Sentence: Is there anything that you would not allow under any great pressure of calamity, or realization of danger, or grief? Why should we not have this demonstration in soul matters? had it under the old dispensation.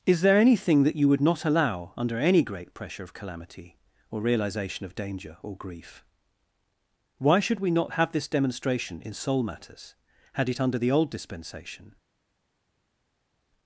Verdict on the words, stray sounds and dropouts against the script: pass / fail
pass